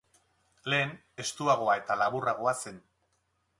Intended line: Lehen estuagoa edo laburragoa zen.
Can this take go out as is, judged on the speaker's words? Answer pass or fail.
fail